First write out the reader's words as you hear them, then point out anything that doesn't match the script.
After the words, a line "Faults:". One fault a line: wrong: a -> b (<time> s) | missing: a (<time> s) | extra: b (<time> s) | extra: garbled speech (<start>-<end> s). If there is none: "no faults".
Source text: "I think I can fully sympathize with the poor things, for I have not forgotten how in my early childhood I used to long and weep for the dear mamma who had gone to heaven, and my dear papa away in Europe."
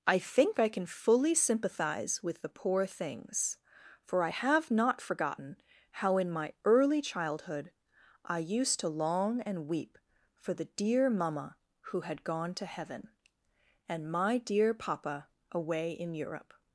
"I think I can fully sympathize with the poor things, for I have not forgotten how in my early childhood I used to long and weep for the dear mamma who had gone to heaven, and my dear papa away in Europe."
Faults:
no faults